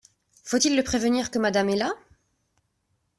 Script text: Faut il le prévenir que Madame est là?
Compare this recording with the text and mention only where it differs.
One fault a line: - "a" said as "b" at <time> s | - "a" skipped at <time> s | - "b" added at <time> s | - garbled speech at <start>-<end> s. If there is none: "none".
none